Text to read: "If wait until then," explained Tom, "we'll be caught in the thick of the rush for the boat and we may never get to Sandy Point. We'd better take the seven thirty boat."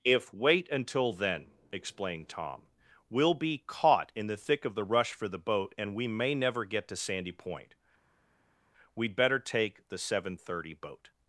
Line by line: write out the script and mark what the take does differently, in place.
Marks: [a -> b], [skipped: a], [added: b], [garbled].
"If wait until then," explained Tom, "we'll be caught in the thick of the rush for the boat and we may never get to Sandy Point. We'd better take the seven thirty boat."